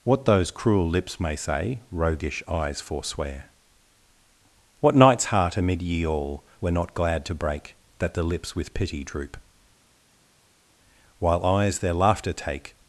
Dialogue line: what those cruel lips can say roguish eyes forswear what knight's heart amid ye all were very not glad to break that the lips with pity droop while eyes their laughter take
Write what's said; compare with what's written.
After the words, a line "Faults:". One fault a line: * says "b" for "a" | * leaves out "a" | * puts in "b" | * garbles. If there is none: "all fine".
what those cruel lips may say roguish eyes forswear what knight's heart amid ye all were not glad to break that the lips with pity droop while eyes their laughter take
Faults:
* says "may" for "can"
* leaves out "very"